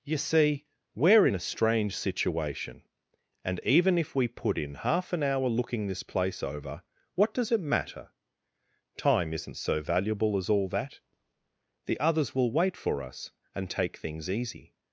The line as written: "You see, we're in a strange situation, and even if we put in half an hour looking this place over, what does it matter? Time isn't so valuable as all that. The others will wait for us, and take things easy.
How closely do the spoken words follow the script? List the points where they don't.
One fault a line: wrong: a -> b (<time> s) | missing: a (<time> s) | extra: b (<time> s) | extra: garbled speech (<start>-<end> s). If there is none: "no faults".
no faults